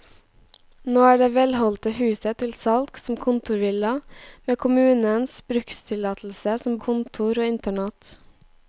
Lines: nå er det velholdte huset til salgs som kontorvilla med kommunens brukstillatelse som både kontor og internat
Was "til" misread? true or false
false